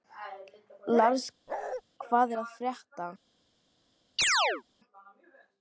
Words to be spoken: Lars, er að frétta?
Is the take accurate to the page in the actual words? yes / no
no